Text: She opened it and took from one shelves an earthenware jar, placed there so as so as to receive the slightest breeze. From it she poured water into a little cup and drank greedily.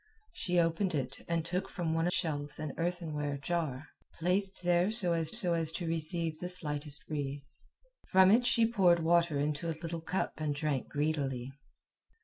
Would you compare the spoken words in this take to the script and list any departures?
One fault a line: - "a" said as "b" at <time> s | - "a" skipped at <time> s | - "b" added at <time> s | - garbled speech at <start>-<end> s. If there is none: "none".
none